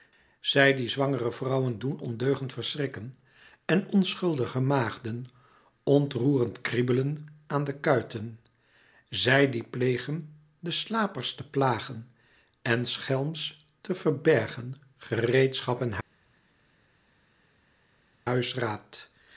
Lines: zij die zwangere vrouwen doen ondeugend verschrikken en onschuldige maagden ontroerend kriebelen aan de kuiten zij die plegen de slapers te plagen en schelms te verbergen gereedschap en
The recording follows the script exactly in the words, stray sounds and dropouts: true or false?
true